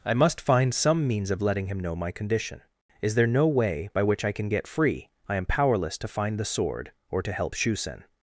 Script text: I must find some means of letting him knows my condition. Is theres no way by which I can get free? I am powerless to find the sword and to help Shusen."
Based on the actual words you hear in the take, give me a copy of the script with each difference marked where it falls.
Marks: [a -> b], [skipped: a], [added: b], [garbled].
I must find some means of letting him [knows -> know] my condition. Is [theres -> there] no way by which I can get free? I am powerless to find the sword [and -> or] to help Shusen."